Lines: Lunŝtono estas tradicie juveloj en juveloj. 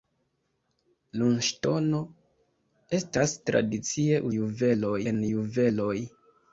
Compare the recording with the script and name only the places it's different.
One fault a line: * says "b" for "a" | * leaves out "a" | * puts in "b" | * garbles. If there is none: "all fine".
all fine